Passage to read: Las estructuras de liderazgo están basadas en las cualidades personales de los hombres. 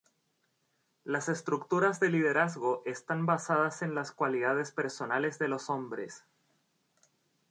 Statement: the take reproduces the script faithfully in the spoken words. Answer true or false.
true